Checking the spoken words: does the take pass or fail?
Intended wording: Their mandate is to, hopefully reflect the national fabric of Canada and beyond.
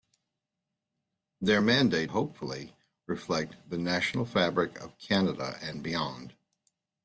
fail